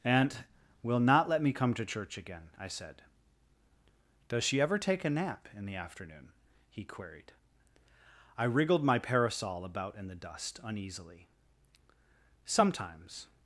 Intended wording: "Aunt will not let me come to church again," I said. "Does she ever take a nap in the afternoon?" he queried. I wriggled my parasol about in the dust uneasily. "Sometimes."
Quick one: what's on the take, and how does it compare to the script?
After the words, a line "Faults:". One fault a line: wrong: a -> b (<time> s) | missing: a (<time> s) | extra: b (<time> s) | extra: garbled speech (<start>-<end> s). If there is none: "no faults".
"Aunt will not let me come to church again," I said. "Does she ever take a nap in the afternoon?" he queried. I wriggled my parasol about in the dust uneasily. "Sometimes."
Faults:
no faults